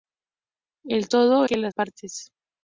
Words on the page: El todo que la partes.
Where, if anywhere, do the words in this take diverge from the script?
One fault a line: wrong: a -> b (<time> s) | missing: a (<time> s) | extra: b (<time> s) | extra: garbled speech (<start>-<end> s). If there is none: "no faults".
no faults